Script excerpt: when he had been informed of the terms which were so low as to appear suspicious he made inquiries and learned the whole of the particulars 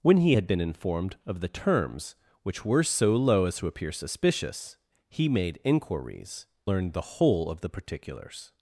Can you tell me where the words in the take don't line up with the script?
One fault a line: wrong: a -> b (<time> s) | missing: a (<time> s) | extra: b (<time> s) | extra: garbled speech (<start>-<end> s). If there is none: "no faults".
missing: and (6.5 s)